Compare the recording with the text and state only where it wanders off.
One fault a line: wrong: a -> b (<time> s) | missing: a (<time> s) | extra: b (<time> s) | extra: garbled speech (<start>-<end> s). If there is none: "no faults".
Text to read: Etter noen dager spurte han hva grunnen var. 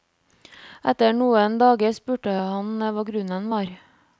no faults